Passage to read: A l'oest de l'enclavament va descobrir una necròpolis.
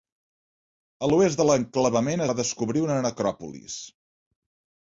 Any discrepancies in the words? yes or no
no